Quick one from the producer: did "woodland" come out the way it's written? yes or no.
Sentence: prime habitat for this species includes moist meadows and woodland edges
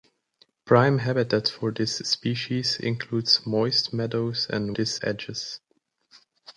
no